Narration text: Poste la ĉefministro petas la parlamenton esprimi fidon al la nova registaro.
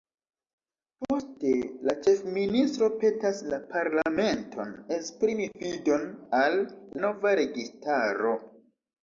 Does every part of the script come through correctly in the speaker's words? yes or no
no